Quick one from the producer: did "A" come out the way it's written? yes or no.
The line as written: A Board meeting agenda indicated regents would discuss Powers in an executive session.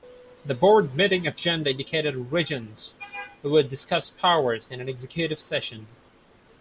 no